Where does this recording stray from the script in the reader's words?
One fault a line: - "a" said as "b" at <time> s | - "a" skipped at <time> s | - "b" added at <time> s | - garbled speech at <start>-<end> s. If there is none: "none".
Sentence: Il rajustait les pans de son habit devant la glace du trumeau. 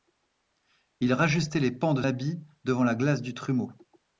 - "son" skipped at 2.0 s